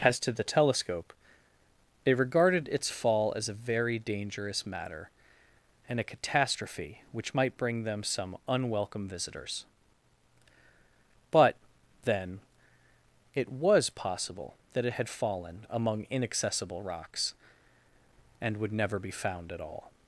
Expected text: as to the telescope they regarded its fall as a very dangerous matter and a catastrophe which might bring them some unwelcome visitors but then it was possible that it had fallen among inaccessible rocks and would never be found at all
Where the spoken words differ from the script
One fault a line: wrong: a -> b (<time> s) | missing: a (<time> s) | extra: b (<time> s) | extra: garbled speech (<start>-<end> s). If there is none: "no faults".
wrong: they -> it (2.0 s)